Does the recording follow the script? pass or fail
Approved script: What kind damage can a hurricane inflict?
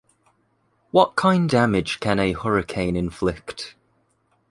pass